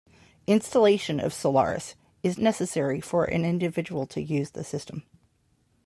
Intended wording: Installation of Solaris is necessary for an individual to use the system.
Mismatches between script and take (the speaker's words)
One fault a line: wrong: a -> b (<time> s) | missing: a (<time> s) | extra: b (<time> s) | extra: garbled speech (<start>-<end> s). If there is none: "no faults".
no faults